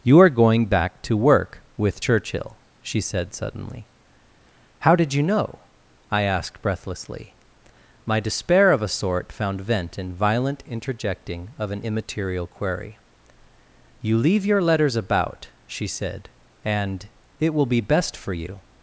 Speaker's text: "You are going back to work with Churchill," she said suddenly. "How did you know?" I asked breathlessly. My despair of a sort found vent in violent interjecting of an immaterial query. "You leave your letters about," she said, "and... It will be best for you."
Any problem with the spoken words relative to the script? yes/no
no